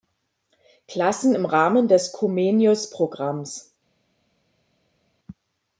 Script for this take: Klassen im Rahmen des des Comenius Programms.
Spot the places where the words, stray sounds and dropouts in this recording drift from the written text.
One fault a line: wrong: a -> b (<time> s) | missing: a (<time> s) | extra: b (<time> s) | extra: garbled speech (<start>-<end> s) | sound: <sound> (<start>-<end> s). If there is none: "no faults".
missing: des (2.1 s)